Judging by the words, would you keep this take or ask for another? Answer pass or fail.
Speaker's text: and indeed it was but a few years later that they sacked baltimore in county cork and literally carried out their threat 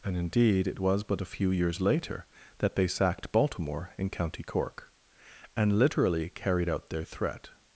pass